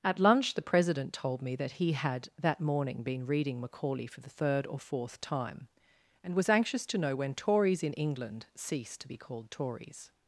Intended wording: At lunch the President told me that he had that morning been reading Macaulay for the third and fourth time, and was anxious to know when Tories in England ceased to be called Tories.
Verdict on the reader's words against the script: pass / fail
fail